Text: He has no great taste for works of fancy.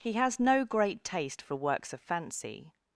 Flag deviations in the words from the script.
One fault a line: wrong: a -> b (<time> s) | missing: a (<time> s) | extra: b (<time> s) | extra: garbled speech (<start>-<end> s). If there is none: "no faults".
no faults